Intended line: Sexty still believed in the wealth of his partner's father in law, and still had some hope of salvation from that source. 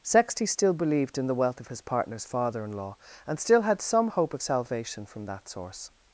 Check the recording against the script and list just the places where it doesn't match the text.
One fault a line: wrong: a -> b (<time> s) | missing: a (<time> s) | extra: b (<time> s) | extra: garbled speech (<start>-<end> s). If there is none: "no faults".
no faults